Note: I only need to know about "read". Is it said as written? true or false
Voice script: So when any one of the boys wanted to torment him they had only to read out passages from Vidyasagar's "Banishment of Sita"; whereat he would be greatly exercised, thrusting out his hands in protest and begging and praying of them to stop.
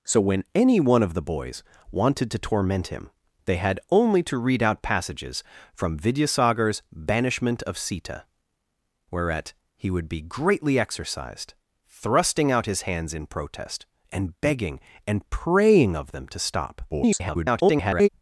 true